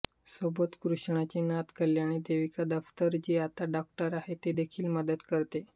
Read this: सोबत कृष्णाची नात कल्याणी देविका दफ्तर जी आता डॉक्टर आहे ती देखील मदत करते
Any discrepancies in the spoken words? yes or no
no